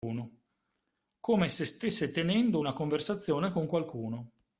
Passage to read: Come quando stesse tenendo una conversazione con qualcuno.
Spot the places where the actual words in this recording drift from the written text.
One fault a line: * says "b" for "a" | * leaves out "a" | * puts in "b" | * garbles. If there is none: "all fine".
* says "se" for "quando"